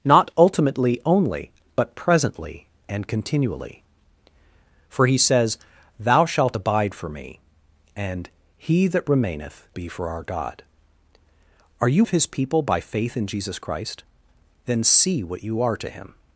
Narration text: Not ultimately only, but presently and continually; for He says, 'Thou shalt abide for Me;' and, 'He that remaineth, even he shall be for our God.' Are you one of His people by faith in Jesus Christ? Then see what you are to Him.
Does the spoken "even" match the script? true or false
false